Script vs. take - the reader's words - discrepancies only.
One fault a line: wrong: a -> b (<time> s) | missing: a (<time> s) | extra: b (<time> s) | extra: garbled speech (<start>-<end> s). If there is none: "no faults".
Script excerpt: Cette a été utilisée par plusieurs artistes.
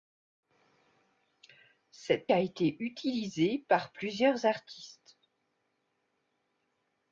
no faults